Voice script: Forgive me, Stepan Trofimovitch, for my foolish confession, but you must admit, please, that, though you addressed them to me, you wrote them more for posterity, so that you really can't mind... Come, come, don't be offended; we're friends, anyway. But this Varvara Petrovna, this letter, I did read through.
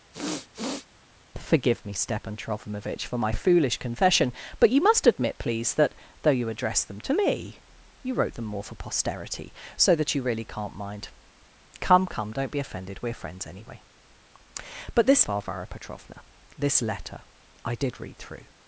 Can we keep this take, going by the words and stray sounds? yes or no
no